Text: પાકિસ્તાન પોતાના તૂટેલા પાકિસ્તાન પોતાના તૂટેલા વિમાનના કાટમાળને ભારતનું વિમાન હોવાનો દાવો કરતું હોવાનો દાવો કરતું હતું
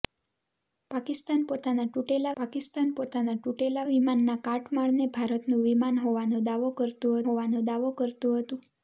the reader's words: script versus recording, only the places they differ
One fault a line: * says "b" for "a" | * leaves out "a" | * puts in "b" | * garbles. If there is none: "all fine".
all fine